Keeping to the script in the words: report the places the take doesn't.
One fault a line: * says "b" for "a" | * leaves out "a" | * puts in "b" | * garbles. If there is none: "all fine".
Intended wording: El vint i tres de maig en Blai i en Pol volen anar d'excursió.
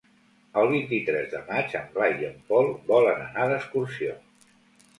all fine